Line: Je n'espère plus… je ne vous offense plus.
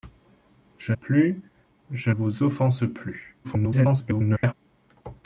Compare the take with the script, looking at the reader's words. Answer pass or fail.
fail